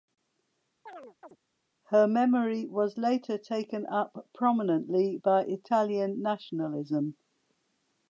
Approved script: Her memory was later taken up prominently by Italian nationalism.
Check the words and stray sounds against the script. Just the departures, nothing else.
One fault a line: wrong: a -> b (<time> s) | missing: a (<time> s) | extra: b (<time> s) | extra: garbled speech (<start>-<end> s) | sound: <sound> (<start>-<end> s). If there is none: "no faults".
sound: chirp (0.9-1.4 s)